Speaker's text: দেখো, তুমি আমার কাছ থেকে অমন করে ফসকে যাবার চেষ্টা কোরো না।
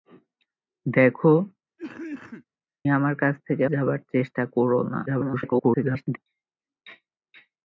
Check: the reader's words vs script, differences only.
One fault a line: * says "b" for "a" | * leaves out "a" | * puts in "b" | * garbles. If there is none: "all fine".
* leaves out "তুমি"
* leaves out "অমন করে ফসকে"
* garbles